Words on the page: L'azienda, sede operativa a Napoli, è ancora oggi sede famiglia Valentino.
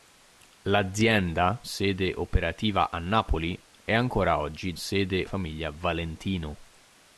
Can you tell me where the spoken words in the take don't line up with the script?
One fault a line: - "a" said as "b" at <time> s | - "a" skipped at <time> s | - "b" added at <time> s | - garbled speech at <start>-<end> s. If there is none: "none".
none